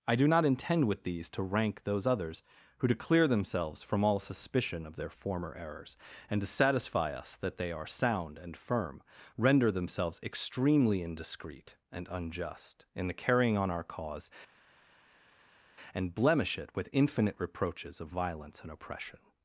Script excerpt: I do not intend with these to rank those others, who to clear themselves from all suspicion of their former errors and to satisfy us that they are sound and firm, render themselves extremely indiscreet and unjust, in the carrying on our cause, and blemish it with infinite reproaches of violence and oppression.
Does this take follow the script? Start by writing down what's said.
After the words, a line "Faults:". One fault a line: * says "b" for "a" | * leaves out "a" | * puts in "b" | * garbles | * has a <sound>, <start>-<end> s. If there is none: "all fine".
I do not intend with these to rank those others, who to clear themselves from all suspicion of their former errors and to satisfy us that they are sound and firm, render themselves extremely indiscreet and unjust, in the carrying on our cause, and blemish it with infinite reproaches of violence and oppression.
Faults:
all fine